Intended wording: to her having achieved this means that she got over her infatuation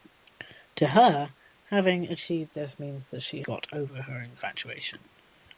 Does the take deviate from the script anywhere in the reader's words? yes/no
no